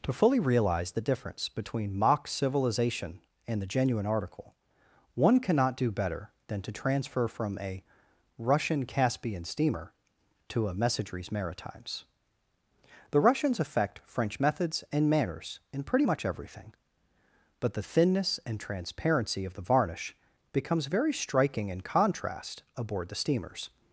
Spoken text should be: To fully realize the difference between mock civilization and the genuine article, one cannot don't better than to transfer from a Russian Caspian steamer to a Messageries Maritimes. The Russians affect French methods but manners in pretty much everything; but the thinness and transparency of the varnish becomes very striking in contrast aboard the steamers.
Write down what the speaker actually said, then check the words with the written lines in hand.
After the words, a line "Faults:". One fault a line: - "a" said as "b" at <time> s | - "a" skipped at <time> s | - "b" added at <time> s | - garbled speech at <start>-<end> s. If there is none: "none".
To fully realize the difference between mock civilization and the genuine article, one cannot do better than to transfer from a Russian Caspian steamer to a Messageries Maritimes. The Russians affect French methods and manners in pretty much everything; but the thinness and transparency of the varnish becomes very striking in contrast aboard the steamers.
Faults:
- "don't" said as "do" at 5.8 s
- "but" said as "and" at 14.9 s